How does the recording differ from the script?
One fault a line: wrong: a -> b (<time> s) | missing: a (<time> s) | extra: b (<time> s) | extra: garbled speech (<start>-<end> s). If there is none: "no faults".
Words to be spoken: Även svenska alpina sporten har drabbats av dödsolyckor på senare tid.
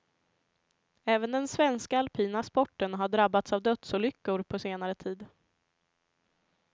extra: den (1.3 s)